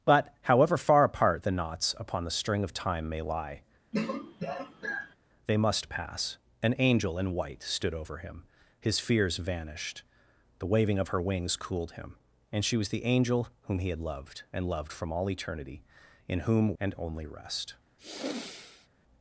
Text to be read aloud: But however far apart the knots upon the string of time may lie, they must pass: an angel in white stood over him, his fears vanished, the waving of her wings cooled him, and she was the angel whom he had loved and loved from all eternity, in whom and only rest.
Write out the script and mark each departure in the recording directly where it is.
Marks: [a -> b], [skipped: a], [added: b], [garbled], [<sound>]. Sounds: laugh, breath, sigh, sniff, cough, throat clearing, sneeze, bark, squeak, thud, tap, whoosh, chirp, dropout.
But however far apart the knots upon the string of time may lie, [throat clearing] they must pass: an angel in white stood over him, his fears vanished, the waving of her wings cooled him, and she was the angel whom he had loved and loved from all eternity, in whom and only rest. [sigh]